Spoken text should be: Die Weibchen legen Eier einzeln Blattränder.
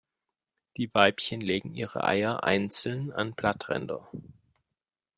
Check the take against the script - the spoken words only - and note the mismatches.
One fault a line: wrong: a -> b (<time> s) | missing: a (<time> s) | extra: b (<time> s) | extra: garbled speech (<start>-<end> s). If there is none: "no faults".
extra: ihre (1.8 s)
extra: an (3.1 s)